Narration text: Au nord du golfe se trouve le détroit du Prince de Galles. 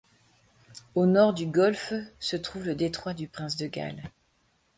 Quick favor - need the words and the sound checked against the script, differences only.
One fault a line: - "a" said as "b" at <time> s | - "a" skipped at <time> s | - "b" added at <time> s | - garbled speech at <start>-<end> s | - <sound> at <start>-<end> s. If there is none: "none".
none